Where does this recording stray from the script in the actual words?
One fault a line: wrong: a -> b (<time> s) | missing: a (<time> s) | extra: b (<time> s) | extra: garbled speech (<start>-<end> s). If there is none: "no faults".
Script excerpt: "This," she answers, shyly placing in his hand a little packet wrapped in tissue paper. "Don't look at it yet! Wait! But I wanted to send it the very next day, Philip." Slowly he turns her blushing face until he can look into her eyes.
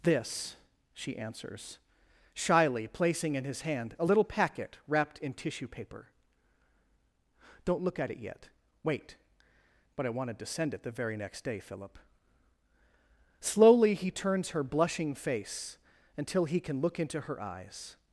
no faults